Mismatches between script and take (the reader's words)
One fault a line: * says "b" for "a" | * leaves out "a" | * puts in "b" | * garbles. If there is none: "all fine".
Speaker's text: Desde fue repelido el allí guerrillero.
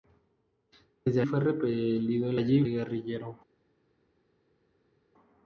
all fine